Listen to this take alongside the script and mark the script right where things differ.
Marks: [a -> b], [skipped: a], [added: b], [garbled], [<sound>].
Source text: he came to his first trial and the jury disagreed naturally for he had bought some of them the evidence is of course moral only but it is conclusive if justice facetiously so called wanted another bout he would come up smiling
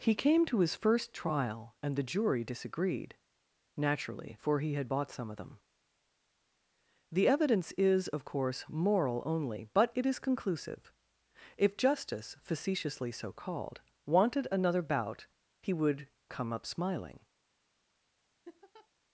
he came to his first trial and the jury disagreed naturally for he had bought some of them the evidence is of course moral only but it is conclusive if justice facetiously so called wanted another bout he would come up smiling [laugh]